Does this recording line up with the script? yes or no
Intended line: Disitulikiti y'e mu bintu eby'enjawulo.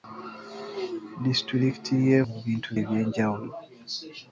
yes